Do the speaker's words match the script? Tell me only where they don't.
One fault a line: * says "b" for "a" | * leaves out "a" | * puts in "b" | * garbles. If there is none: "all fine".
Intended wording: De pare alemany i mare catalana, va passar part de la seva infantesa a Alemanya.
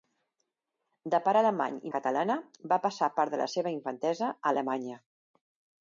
* leaves out "mare"